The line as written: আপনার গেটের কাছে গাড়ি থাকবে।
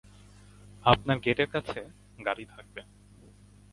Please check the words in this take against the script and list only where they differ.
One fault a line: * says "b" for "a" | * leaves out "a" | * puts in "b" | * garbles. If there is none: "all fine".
all fine